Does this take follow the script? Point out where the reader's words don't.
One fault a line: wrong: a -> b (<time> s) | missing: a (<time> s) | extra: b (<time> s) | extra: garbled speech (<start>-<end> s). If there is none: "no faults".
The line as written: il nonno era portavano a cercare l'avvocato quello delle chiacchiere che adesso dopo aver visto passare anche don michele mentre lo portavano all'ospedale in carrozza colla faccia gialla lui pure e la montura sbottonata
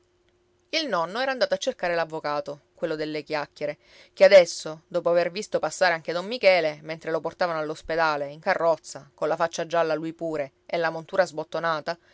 wrong: portavano -> andato (1.3 s)